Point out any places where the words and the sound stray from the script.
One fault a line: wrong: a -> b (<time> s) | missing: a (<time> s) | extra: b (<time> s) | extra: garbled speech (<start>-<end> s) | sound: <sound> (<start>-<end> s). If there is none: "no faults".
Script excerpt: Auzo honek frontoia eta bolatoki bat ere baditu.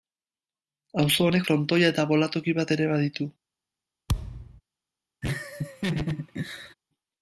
sound: thud (4.1-4.6 s)
sound: laugh (5.2-6.7 s)